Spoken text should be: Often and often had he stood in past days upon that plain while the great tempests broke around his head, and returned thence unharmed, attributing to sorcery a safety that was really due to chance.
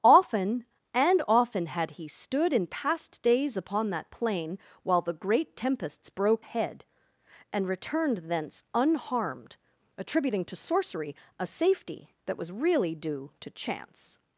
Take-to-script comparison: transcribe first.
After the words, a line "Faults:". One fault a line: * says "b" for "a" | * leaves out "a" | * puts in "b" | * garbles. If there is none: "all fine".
Often and often had he stood in past days upon that plain while the great tempests broke head, and returned thence unharmed, attributing to sorcery a safety that was really due to chance.
Faults:
* leaves out "around his"